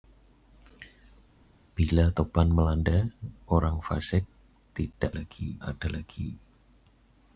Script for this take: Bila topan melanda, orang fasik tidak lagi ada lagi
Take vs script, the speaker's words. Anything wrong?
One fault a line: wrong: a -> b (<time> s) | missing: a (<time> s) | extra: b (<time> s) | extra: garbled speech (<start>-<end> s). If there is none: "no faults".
no faults